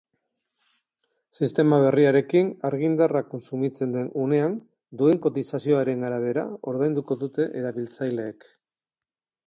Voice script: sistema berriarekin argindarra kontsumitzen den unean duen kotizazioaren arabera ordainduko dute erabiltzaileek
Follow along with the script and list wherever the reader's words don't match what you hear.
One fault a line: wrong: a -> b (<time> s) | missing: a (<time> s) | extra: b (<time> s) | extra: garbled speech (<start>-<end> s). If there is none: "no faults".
no faults